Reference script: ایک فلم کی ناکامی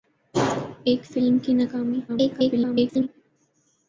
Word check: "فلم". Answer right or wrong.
right